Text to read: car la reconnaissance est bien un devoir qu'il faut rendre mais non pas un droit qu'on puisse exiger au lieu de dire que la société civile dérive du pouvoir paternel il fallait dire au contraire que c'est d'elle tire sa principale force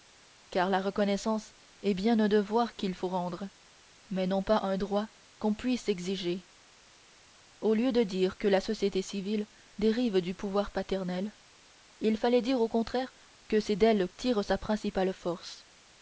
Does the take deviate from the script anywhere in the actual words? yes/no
no